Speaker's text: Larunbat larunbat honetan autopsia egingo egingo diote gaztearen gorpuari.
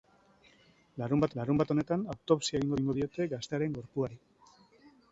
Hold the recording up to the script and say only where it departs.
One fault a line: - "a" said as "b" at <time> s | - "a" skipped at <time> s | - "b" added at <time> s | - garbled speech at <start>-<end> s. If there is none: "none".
none